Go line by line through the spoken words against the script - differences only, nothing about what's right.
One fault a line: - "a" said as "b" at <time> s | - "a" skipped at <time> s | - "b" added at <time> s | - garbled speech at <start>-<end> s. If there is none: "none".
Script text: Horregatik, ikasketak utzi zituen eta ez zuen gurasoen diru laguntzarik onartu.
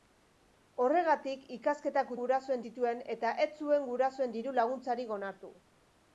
- "utzi" said as "gurasoen" at 2.2 s